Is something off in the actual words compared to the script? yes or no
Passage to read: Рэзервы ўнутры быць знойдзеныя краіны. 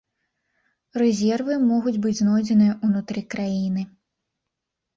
yes